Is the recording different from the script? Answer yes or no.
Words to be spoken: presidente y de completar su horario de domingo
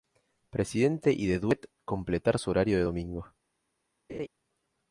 yes